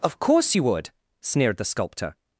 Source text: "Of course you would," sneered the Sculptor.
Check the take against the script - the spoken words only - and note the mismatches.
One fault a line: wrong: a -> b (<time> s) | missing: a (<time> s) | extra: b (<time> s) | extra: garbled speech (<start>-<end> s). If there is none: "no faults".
no faults